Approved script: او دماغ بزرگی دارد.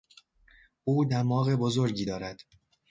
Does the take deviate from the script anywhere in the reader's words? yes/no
no